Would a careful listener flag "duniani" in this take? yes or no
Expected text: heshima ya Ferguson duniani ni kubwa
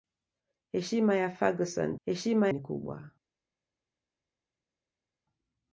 yes